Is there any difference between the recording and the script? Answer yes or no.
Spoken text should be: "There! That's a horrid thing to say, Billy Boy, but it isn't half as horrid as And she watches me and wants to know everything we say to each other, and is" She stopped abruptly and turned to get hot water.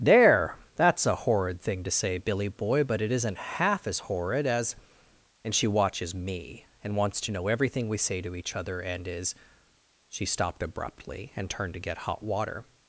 no